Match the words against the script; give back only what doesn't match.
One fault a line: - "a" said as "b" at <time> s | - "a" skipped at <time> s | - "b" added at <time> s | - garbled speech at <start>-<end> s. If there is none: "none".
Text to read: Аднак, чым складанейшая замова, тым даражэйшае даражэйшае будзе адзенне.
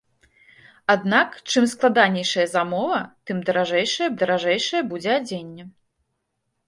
none